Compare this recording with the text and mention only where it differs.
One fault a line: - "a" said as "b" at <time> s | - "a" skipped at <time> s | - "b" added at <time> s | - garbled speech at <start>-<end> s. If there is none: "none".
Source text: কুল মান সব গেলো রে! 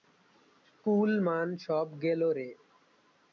none